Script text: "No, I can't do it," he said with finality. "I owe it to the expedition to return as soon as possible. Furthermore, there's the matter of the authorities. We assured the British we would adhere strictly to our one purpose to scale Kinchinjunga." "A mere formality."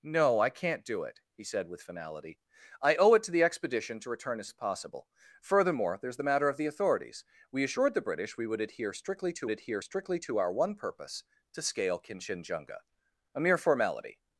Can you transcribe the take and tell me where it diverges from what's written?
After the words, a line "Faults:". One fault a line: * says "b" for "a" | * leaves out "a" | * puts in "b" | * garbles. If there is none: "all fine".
"No, I can't do it," he said with finality. "I owe it to the expedition to return as as possible. Furthermore, there's the matter of the authorities. We assured the British we would adhere strictly to adhere strictly to our one purpose to scale Kinchinjunga." "A mere formality."
Faults:
* leaves out "soon"
* puts in "adhere strictly to"